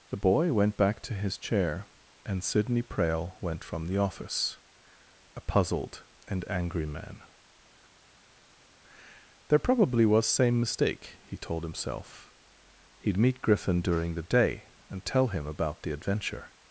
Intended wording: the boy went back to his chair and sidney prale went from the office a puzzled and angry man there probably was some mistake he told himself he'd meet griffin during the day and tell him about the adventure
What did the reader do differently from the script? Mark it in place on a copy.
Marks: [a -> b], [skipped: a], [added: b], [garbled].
the boy went back to his chair and sidney prale went from the office a puzzled and angry man there probably was [some -> same] mistake he told himself he'd meet griffin during the day and tell him about the adventure